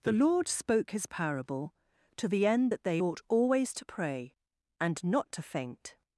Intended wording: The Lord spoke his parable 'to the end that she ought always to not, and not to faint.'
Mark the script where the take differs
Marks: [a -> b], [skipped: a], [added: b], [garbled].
The Lord spoke his parable 'to the end that [she -> they] ought always to [not, -> pray] and not to faint.'